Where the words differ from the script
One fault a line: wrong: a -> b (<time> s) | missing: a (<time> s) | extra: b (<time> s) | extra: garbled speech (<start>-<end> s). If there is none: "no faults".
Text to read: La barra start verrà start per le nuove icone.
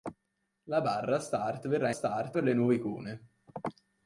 no faults